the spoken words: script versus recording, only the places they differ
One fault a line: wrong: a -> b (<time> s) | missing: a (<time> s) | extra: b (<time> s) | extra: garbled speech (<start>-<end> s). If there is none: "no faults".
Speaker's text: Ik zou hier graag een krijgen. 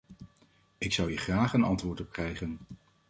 extra: antwoord op (1.6 s)